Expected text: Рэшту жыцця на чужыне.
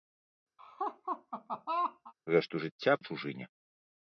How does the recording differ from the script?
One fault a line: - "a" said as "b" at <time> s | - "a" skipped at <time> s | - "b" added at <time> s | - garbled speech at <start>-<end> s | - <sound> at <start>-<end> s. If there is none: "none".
- laugh at 0.6-2.1 s